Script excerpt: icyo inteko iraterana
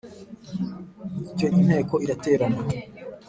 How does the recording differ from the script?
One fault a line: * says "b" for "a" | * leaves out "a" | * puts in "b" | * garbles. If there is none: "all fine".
all fine